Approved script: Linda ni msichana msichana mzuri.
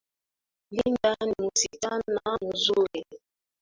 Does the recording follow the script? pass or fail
fail